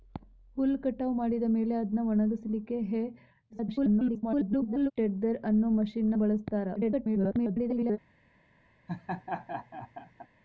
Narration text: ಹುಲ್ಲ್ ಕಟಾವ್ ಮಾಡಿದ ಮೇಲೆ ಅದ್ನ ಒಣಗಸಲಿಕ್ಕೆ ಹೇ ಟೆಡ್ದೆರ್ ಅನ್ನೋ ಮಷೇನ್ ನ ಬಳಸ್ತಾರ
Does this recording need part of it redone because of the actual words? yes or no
yes